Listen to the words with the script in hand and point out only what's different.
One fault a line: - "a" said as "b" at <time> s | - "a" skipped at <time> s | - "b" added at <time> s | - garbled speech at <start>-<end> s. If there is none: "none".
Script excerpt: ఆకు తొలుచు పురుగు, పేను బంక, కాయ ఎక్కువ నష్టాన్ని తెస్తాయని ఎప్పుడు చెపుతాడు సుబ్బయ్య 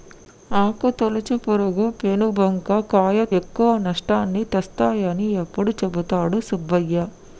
none